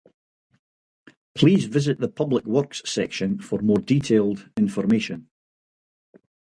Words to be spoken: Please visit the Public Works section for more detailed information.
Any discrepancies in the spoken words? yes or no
no